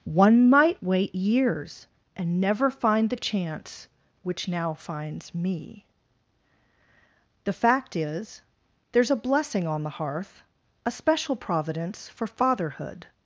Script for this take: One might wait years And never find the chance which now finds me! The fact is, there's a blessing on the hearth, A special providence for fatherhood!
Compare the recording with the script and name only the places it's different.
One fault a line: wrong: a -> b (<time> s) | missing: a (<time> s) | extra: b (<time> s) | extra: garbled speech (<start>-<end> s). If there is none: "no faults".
no faults